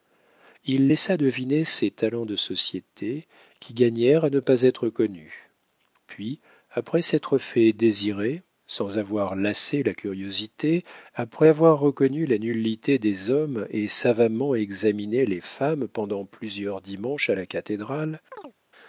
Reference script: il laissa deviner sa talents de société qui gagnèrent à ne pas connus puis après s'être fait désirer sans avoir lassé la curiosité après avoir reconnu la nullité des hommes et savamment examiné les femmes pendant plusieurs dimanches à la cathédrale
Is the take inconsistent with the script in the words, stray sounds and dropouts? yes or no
yes